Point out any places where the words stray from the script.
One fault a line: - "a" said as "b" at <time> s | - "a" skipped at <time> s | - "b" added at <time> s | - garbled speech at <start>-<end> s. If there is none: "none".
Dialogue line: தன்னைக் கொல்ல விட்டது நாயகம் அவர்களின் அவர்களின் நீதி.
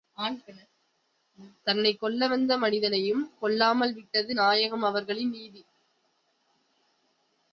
- "வந்த மனிதனையும் கொல்லாமல்" added at 2.3 s
- "அவர்களின்" skipped at 5.3 s